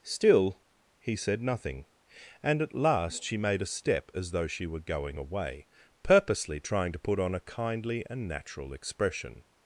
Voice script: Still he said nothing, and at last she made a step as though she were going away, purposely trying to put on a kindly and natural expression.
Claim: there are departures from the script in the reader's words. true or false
false